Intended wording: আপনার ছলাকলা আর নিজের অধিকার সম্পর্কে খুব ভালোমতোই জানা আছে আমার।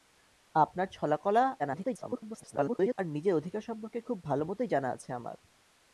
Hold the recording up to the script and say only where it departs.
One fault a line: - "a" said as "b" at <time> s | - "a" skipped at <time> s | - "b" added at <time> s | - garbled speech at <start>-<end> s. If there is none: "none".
- garbled speech at 1.6-3.0 s